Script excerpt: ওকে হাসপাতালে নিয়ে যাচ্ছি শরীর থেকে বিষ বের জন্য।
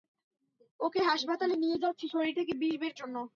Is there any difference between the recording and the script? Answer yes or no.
no